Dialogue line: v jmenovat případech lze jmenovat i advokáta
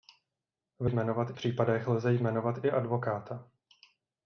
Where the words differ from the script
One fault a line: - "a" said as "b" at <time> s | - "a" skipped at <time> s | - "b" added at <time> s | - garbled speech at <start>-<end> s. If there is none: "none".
none